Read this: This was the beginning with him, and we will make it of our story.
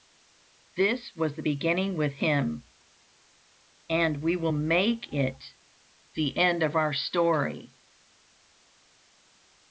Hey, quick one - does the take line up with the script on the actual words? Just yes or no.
no